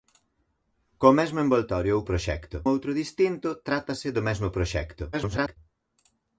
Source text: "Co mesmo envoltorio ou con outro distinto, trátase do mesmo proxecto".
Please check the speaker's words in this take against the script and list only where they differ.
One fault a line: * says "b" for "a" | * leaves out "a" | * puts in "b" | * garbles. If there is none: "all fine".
* says "proxecto" for "con"
* garbles